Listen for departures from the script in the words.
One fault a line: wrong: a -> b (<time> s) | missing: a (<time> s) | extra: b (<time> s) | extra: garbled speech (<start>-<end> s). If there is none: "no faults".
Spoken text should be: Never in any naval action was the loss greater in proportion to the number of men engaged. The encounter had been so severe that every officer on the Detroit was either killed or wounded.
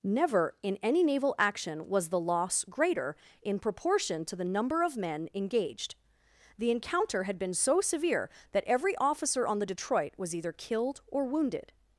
no faults